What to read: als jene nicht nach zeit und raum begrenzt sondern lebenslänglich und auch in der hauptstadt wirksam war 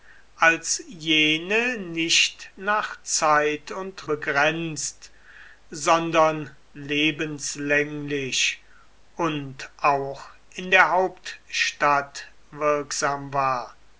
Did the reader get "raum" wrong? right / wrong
wrong